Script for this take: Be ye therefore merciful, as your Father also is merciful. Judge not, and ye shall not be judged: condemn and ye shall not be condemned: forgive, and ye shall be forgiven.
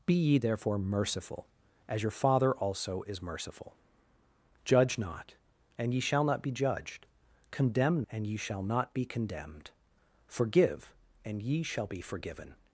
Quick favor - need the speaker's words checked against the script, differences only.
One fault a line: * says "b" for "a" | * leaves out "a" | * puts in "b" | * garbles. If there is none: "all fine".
all fine